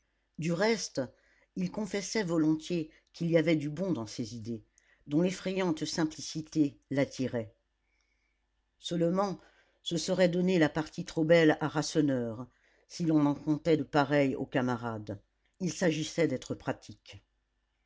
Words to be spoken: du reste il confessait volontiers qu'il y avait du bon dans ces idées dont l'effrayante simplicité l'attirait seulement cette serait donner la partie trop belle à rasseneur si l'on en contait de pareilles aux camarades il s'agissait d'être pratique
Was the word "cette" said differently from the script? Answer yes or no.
yes